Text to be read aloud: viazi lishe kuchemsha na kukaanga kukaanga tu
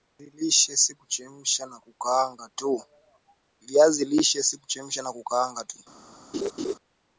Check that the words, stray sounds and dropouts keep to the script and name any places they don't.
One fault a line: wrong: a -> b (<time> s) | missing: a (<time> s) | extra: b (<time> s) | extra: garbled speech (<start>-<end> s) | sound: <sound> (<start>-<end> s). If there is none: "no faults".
extra: si (0.8 s)
missing: kukaanga (5.6 s)
sound: laugh (6.3-6.7 s)